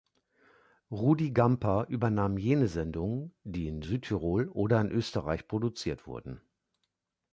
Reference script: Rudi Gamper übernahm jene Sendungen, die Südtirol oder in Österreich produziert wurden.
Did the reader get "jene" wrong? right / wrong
right